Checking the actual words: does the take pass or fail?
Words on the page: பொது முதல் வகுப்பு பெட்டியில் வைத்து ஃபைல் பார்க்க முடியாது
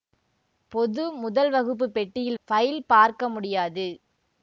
fail